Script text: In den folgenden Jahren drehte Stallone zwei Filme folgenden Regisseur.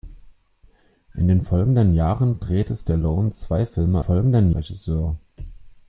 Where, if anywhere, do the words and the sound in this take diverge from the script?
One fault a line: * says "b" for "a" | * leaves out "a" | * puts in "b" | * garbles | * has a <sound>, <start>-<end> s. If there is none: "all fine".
all fine